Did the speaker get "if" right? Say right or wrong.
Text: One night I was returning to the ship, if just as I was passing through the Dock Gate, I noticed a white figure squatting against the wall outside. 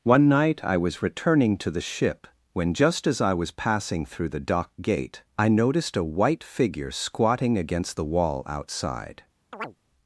wrong